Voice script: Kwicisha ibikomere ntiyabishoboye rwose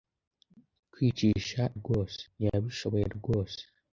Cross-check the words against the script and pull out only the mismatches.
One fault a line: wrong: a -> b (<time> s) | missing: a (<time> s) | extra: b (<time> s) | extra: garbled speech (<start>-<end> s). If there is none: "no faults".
wrong: ibikomere -> rwose (1.8 s)